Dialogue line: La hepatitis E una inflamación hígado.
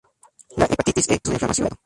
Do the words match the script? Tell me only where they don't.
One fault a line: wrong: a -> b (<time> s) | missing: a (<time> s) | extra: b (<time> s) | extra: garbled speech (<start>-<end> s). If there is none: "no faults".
no faults